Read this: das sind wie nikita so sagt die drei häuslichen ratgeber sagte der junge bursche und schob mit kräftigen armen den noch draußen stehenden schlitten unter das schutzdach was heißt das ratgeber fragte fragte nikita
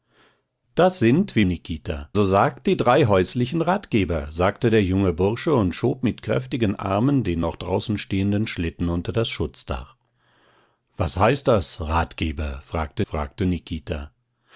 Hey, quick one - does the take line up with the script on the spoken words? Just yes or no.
yes